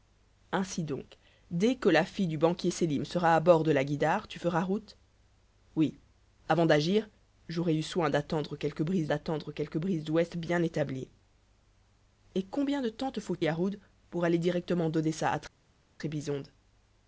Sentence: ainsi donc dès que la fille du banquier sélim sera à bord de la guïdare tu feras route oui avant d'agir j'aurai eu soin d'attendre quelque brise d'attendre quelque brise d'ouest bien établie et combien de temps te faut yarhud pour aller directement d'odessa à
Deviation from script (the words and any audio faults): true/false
false